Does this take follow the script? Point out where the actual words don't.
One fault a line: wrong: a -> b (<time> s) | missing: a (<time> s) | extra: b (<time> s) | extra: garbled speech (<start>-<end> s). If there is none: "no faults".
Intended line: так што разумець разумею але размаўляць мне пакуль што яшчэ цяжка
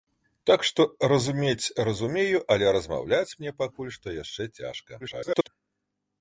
extra: garbled speech (5.0-5.5 s)